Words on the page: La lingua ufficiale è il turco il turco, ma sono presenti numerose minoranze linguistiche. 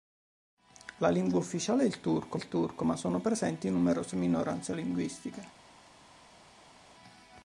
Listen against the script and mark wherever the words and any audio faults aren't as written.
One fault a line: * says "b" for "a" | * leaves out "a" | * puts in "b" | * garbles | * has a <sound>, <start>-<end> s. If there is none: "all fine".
all fine